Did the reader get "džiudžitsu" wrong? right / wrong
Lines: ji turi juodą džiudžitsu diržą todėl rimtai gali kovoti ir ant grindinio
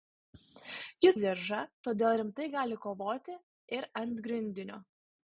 wrong